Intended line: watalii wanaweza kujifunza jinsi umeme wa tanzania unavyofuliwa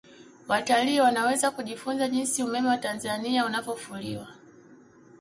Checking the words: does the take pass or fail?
pass